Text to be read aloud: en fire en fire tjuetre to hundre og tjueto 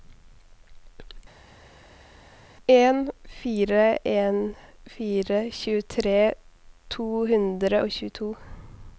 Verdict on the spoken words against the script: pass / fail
pass